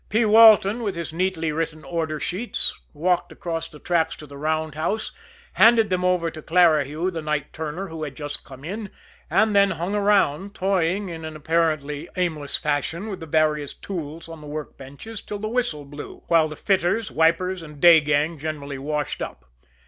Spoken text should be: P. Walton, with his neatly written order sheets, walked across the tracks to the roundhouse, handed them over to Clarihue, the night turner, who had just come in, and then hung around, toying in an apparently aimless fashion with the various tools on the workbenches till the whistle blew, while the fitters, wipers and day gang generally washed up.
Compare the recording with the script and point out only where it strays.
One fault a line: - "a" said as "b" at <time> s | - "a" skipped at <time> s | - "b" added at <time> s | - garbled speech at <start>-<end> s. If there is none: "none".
none